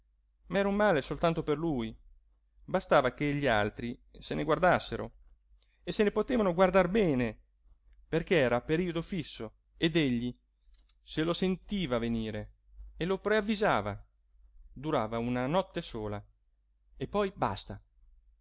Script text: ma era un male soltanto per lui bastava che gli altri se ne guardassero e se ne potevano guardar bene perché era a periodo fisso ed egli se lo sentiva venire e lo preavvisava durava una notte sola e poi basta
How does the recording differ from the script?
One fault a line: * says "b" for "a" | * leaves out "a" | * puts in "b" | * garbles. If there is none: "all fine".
all fine